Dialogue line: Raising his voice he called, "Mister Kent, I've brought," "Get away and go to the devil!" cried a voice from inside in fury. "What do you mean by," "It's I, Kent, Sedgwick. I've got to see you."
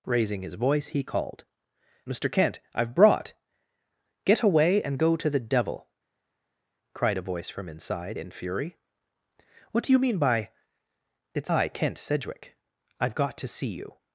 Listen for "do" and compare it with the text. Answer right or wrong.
right